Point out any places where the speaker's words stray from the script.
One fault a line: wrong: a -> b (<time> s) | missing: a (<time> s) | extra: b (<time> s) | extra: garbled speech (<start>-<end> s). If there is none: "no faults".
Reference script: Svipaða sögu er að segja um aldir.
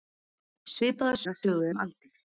missing: sögu (1.2 s)
wrong: segja -> sögu (1.4 s)